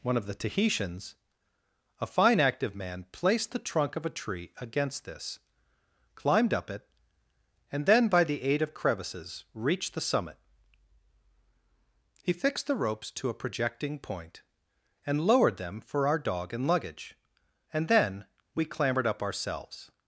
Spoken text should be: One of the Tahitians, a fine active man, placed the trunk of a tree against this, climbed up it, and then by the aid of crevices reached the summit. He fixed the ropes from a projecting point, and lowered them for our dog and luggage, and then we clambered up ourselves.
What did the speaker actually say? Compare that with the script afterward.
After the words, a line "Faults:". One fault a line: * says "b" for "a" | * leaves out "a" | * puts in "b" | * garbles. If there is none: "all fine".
One of the Tahitians, a fine active man, placed the trunk of a tree against this, climbed up it, and then by the aid of crevices reached the summit. He fixed the ropes to a projecting point, and lowered them for our dog and luggage, and then we clambered up ourselves.
Faults:
* says "to" for "from"